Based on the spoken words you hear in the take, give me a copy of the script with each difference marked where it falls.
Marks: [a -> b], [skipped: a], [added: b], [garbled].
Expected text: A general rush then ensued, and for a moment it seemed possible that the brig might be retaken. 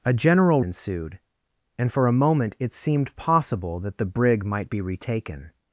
A general [skipped: rush then] ensued, and for a moment it seemed possible that the brig might be retaken.